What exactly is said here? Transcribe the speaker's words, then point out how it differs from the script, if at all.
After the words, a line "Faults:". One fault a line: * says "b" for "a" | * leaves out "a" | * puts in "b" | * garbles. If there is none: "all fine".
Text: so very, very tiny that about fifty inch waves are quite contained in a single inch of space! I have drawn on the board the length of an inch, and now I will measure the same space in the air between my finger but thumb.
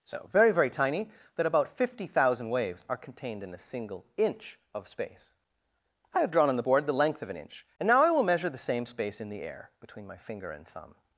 so very, very tiny that about fifty thousand waves are contained in a single inch of space! I have drawn on the board the length of an inch, and now I will measure the same space in the air between my finger and thumb.
Faults:
* says "thousand" for "inch"
* leaves out "quite"
* says "and" for "but"